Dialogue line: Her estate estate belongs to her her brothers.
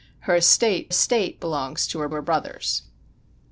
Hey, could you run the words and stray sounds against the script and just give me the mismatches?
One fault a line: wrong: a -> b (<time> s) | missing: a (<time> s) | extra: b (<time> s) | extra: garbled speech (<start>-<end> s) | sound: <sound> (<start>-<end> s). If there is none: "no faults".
no faults